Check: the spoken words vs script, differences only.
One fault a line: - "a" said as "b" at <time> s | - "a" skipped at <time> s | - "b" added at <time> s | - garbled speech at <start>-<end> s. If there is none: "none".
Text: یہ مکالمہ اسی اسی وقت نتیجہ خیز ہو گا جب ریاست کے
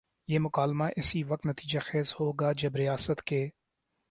- "اسی" skipped at 1.2 s